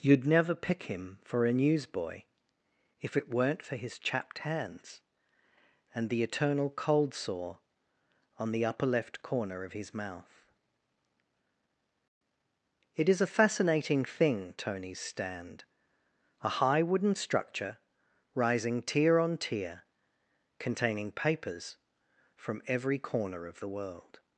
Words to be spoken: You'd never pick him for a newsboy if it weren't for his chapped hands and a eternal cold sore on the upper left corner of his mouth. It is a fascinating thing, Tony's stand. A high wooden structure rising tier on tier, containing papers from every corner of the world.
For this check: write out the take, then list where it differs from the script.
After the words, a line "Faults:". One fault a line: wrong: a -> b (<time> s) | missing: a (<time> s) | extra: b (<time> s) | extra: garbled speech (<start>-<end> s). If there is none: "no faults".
You'd never pick him for a newsboy if it weren't for his chapped hands and the eternal cold sore on the upper left corner of his mouth. It is a fascinating thing, Tony's stand. A high wooden structure rising tier on tier, containing papers from every corner of the world.
Faults:
wrong: a -> the (6.1 s)